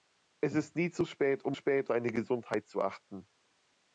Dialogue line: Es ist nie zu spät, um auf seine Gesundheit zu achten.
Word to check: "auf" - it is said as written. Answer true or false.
false